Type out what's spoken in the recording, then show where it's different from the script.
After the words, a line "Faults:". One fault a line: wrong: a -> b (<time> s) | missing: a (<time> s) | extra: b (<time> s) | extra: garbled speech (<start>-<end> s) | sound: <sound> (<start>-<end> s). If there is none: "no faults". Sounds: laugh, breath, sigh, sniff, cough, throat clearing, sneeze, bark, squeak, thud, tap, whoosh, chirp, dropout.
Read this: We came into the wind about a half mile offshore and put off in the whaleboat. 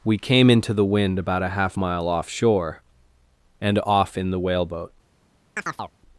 We came into the wind about a half mile offshore and off in the whaleboat.
Faults:
missing: put (3.8 s)
sound: chirp (5.6-5.9 s)